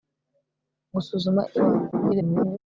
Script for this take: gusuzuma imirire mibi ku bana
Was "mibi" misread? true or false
true